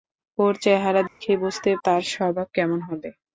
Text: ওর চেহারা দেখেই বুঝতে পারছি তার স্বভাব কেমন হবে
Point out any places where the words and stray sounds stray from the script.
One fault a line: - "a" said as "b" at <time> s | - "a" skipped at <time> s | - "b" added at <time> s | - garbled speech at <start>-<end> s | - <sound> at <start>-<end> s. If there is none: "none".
- dropout at 1.1-1.2 s
- "পারছি" skipped at 1.7 s